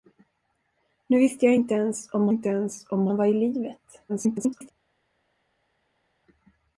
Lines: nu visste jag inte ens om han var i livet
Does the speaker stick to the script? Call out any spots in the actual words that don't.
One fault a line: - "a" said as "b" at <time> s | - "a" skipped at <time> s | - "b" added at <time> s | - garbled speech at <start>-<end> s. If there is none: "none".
- "inte ens om" added at 2.3 s
- garbled speech at 4.1-4.7 s